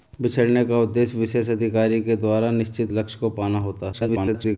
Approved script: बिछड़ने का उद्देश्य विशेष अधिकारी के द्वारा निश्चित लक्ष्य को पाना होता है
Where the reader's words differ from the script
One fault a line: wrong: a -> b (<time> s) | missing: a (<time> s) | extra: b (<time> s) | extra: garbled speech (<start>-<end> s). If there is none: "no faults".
extra: garbled speech (3.9-4.6 s)